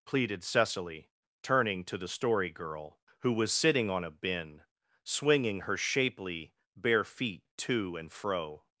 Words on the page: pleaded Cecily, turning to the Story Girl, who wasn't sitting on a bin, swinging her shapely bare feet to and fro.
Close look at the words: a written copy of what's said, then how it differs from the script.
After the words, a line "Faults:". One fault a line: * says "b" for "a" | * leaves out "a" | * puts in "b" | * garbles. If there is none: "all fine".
pleaded Cecily, turning to the Story Girl, who was sitting on a bin, swinging her shapely bare feet to and fro.
Faults:
* says "was" for "wasn't"